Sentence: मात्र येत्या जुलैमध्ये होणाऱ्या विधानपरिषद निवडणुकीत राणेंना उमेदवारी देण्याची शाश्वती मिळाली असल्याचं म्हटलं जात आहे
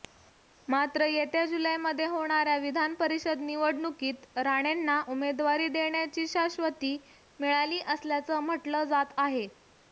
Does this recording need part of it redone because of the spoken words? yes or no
no